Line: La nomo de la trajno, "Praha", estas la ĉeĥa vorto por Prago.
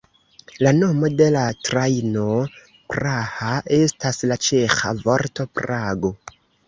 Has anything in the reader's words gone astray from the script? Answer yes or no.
yes